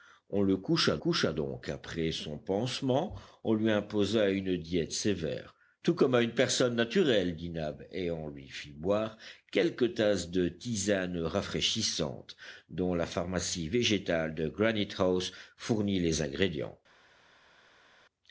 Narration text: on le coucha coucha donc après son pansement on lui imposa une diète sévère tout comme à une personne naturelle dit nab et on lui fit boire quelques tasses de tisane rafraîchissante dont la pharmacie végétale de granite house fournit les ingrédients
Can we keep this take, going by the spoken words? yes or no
yes